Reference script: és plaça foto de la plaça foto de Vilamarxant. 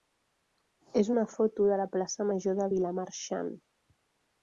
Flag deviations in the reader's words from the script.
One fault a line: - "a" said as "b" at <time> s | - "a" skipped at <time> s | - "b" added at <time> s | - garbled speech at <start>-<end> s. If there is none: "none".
- "plaça" said as "una" at 1.1 s
- "foto" said as "major" at 2.3 s